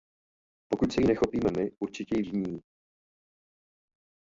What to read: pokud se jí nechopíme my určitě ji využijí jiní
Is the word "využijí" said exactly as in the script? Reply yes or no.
no